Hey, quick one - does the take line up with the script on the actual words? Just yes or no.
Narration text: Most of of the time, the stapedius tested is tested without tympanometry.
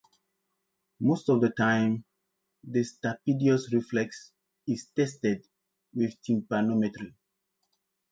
no